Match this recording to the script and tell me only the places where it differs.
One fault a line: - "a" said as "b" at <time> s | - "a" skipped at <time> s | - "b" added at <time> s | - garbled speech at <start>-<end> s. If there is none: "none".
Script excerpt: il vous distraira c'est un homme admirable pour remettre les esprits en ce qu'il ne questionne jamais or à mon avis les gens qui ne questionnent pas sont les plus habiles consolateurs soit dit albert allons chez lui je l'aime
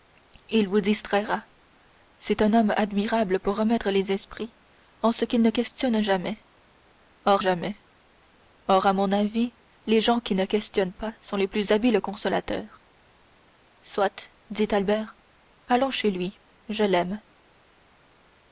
- "jamais or" added at 7.4 s